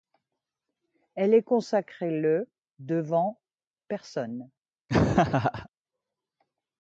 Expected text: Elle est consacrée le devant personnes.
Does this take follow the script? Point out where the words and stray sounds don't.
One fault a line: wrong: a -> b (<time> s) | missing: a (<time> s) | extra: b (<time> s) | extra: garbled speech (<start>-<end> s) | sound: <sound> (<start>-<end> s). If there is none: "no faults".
sound: laugh (4.9-5.7 s)